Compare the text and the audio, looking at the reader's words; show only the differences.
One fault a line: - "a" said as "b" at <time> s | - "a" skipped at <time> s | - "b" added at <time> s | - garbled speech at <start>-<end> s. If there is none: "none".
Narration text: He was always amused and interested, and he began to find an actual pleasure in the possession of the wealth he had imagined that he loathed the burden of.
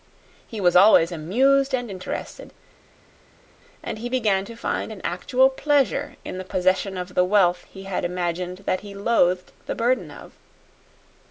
none